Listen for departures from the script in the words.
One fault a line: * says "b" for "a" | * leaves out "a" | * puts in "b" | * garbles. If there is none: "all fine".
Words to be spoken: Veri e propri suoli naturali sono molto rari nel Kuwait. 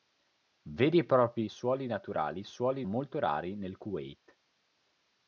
* says "suoli" for "sono"